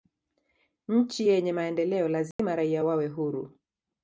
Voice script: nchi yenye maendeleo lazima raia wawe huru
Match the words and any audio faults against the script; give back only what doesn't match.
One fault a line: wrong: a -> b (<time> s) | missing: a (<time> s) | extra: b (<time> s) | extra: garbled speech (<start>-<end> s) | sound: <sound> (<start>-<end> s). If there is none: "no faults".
sound: dropout (2.3-2.4 s)